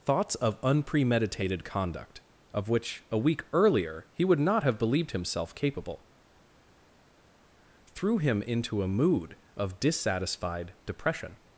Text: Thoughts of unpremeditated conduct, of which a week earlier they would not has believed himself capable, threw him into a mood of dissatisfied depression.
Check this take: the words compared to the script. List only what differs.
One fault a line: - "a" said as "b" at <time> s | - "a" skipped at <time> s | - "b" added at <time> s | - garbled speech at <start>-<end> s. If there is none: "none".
- "they" said as "he" at 4.1 s
- "has" said as "have" at 4.6 s